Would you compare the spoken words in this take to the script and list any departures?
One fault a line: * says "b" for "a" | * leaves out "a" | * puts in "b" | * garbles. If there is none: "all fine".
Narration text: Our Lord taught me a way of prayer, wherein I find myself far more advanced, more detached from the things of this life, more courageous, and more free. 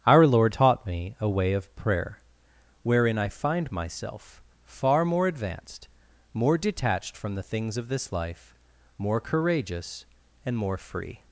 all fine